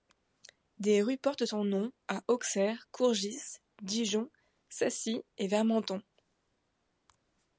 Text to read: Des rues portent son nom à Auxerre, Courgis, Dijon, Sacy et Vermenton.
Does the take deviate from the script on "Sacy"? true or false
false